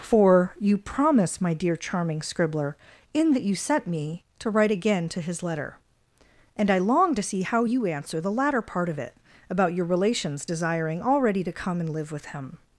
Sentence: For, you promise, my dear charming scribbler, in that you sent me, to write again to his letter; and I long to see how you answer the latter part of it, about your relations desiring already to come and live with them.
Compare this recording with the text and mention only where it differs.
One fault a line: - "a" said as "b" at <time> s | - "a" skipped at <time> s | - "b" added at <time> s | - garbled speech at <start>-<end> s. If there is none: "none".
- "them" said as "him" at 12.3 s